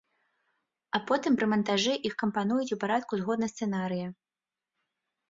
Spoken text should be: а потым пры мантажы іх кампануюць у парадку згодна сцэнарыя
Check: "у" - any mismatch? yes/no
no